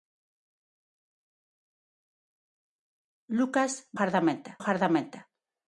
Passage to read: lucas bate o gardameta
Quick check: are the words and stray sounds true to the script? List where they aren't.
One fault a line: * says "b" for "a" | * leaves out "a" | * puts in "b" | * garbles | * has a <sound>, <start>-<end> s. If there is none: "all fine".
* says "gardameta" for "bate"